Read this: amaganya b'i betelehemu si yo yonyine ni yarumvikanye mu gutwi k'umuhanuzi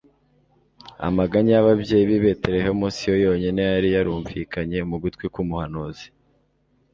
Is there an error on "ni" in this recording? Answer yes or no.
yes